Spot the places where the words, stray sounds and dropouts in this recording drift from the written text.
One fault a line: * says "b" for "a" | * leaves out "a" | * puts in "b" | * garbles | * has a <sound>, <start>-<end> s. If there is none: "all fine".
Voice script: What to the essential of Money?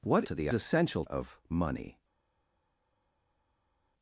all fine